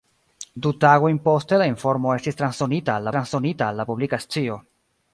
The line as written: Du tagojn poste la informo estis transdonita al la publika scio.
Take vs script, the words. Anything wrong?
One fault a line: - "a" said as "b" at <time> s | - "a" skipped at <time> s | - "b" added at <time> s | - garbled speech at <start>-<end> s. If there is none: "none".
- "transdonita al" added at 3.2 s